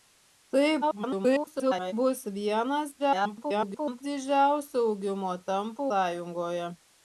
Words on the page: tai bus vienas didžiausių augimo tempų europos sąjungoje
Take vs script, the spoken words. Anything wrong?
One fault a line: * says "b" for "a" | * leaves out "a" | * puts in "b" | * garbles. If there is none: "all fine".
* garbles
* garbles
* leaves out "europos"